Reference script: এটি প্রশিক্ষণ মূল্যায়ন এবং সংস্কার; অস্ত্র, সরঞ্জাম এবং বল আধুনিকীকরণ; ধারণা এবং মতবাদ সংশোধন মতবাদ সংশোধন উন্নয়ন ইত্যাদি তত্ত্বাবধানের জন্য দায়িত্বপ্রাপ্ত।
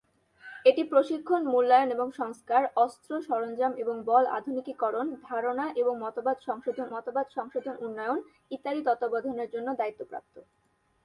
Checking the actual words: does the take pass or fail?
pass